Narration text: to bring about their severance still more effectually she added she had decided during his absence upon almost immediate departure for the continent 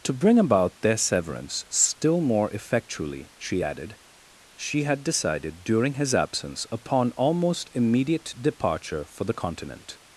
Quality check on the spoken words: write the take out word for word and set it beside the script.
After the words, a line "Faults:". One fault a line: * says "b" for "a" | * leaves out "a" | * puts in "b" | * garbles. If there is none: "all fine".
to bring about their severance still more effectually she added she had decided during his absence upon almost immediate departure for the continent
Faults:
all fine